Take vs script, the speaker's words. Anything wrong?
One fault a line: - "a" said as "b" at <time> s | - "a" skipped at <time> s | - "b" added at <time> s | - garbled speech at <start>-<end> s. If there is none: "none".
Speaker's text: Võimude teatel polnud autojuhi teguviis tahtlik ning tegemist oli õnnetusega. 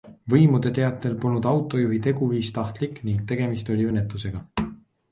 none